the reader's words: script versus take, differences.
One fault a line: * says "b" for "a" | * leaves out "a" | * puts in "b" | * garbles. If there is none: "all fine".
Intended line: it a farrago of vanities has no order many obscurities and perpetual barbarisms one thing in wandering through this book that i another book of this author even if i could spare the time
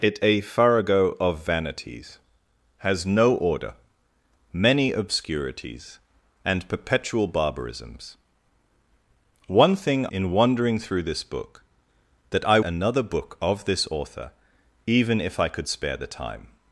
all fine